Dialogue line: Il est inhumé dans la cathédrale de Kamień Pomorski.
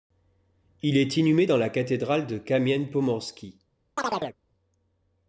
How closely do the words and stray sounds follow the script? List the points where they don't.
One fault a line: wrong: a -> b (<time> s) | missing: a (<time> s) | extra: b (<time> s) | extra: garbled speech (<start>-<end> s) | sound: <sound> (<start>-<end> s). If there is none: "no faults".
sound: chirp (4.0-4.4 s)